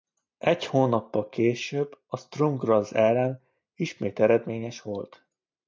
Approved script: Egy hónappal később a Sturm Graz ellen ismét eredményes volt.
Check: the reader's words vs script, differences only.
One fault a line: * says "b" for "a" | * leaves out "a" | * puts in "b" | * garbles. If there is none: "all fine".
all fine